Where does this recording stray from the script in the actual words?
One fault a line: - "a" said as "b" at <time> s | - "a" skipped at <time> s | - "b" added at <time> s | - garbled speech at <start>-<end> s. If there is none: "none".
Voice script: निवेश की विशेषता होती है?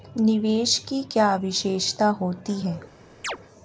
- "क्या" added at 1.0 s